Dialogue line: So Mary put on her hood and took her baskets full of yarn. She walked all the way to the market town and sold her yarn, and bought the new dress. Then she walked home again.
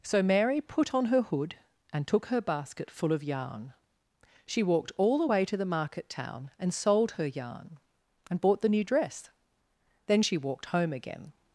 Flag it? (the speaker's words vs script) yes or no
yes